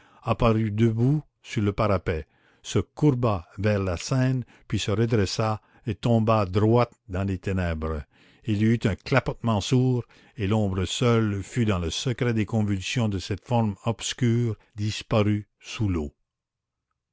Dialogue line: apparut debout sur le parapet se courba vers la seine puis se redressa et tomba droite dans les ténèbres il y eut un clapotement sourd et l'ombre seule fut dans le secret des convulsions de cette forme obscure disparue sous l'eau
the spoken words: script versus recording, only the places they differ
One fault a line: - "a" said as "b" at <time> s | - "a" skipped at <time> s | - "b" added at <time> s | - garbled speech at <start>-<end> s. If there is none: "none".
none